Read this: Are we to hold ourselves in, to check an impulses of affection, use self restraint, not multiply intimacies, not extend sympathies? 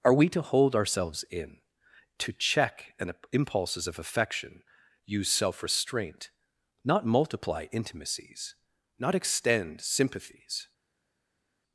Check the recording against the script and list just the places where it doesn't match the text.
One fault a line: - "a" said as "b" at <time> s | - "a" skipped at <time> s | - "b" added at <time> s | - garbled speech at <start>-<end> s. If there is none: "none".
none